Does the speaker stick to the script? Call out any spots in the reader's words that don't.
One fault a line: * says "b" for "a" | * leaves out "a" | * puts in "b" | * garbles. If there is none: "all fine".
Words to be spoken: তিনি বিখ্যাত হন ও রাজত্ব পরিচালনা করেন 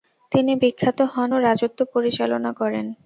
all fine